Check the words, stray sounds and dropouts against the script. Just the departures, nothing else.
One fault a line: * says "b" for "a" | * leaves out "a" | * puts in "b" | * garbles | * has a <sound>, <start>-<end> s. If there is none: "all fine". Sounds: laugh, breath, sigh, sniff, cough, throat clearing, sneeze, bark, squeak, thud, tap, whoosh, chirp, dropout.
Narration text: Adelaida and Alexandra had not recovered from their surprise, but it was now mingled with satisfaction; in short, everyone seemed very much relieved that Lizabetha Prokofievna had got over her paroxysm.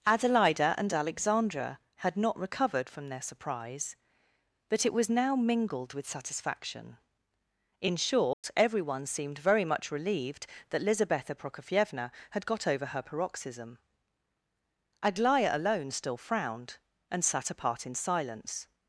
* has a dropout, 8.3-8.4 s
* puts in "Aglaya alone still frowned and sat apart in silence"